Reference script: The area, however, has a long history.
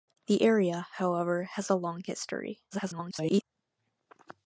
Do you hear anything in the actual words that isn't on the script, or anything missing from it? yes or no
yes